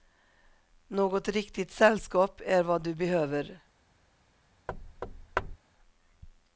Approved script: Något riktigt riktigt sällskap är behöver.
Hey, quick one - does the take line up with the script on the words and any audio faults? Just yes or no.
no